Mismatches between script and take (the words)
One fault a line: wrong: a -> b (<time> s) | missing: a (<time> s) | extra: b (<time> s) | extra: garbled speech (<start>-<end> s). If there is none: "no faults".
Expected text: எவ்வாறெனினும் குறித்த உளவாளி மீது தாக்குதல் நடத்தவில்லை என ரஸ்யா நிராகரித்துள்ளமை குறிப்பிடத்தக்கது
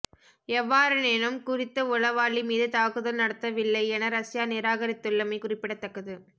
no faults